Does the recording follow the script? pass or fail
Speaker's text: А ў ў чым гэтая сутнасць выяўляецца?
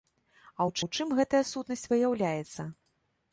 pass